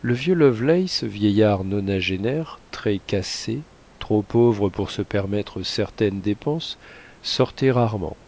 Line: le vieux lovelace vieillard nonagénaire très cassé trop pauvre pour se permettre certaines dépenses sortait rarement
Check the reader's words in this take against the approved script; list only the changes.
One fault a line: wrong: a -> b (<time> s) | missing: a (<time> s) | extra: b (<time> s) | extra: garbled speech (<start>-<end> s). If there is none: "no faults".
no faults